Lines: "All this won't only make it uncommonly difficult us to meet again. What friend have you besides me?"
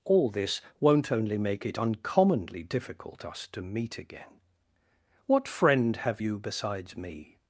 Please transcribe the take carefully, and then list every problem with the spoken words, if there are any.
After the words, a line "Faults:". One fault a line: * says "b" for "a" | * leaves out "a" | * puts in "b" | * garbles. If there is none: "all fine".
"All this won't only make it uncommonly difficult us to meet again. What friend have you besides me?"
Faults:
all fine